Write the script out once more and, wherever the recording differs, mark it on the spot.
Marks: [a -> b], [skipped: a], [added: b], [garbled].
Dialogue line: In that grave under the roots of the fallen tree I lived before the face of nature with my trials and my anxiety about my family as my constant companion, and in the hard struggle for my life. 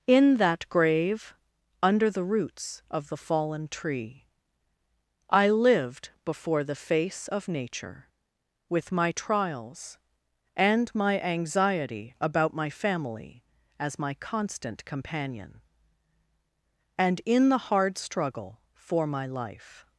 In that grave under the roots of the fallen tree I lived before the face of nature with my trials and my anxiety about my family as my constant companion, and in the hard struggle for my life.